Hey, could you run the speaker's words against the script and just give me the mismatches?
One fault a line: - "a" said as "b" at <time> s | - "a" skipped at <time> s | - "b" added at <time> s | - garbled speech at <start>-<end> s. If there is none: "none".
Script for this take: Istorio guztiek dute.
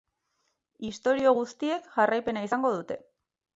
- "jarraipena izango" added at 2.0 s